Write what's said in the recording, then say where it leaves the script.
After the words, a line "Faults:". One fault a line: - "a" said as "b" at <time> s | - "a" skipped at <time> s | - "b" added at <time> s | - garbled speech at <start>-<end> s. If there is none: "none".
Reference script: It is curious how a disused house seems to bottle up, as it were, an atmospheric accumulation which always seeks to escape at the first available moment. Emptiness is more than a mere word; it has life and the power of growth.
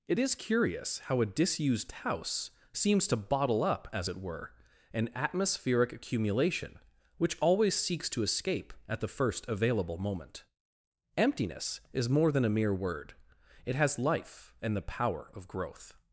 It is curious how a disused house seems to bottle up, as it were, an atmospheric accumulation which always seeks to escape at the first available moment. Emptiness is more than a mere word; it has life and the power of growth.
Faults:
none